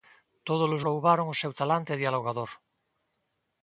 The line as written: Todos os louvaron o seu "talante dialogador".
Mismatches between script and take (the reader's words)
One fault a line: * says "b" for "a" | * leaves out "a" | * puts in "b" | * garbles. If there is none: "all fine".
all fine